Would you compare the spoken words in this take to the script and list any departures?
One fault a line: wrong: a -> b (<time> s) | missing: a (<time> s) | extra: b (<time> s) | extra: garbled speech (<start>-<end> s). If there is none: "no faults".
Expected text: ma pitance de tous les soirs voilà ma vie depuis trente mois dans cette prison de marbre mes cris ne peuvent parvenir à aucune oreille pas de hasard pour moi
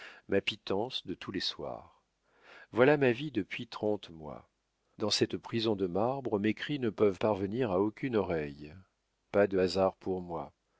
no faults